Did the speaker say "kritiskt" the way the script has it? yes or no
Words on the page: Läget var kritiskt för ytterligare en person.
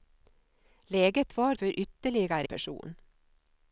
no